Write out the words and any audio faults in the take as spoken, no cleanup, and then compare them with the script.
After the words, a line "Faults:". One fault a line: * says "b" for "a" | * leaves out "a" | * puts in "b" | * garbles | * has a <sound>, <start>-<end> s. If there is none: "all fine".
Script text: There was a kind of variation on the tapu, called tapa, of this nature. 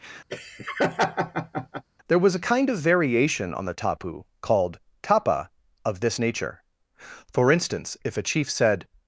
There was a kind of variation on the tapu, called tapa, of this nature. For instance, if a chief said
Faults:
* has a laugh, 0.3-1.8 s
* puts in "For instance if a chief said"